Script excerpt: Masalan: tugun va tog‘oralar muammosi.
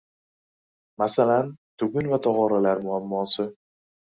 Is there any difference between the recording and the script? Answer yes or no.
no